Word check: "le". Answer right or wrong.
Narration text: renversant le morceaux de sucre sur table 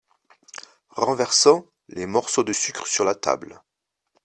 wrong